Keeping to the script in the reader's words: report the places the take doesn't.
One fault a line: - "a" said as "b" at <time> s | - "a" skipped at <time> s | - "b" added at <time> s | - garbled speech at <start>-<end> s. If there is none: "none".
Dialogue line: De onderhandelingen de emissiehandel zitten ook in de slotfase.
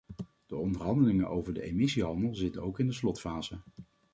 - "over" added at 1.3 s